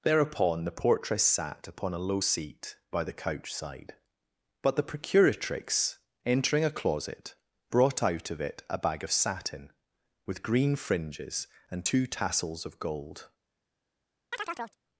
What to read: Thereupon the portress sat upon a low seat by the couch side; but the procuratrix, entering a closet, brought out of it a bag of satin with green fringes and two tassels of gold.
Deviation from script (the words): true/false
false